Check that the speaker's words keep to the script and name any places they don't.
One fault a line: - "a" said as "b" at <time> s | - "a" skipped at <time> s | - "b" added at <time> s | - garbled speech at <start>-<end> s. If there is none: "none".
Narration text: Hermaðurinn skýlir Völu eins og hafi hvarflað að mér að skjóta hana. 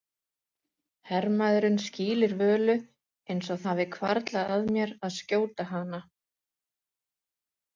none